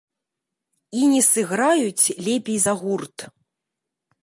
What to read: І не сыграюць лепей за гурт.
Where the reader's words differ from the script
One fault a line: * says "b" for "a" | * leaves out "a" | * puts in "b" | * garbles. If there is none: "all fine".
all fine